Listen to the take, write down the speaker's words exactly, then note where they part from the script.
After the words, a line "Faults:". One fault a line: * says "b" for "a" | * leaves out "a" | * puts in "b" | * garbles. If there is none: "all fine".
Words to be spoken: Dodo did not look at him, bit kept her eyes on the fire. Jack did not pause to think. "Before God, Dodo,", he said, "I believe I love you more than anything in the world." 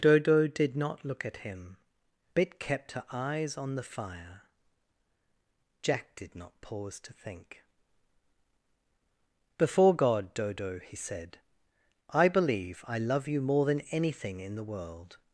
Dodo did not look at him, bit kept her eyes on the fire. Jack did not pause to think. "Before God, Dodo,", he said, "I believe I love you more than anything in the world."
Faults:
all fine